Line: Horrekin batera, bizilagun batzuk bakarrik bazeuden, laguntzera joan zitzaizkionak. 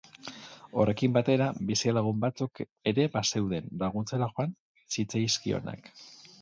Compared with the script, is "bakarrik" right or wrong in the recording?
wrong